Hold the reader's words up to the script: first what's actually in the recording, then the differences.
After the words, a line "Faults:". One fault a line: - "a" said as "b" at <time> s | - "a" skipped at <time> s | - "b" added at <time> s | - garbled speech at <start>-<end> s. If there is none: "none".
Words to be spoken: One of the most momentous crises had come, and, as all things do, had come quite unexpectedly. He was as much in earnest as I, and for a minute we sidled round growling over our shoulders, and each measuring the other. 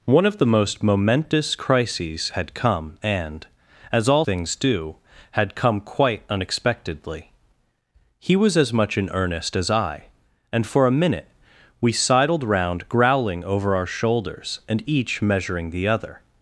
One of the most momentous crises had come, and, as all things do, had come quite unexpectedly. He was as much in earnest as I, and for a minute we sidled round growling over our shoulders, and each measuring the other.
Faults:
none